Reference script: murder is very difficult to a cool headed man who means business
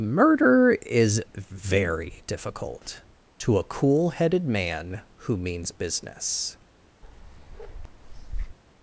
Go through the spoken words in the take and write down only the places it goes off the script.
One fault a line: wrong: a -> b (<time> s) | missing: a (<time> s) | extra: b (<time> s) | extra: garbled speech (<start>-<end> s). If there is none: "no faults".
no faults